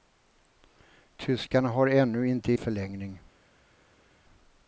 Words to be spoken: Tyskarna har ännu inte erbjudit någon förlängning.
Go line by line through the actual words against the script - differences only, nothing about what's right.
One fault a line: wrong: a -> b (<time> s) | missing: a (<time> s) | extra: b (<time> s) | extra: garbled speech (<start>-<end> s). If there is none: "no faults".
missing: erbjudit någon (2.5 s)